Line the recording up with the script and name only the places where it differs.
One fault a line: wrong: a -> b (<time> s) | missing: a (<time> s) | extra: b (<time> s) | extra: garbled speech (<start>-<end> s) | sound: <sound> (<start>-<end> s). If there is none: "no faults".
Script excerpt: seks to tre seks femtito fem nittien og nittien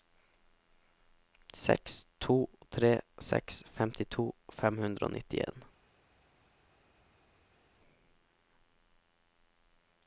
wrong: nittien -> hundre (4.8 s)